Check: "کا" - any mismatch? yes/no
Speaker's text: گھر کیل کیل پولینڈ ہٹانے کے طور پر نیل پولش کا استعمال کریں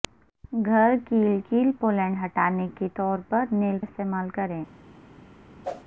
yes